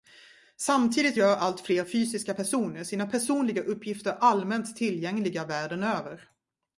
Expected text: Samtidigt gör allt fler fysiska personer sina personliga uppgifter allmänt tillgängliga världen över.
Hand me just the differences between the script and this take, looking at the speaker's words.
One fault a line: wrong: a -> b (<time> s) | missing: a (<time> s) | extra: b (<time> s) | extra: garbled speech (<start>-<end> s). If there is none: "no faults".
no faults